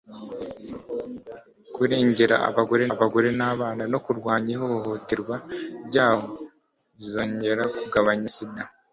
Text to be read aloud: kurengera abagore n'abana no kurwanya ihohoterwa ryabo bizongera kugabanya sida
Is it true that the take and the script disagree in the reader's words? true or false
true